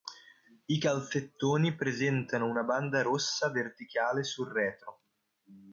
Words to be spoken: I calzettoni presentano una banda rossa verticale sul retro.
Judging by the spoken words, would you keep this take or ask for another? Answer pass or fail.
pass